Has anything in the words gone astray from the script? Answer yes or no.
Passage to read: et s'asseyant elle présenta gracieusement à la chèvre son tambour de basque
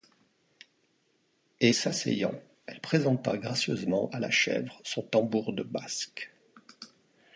no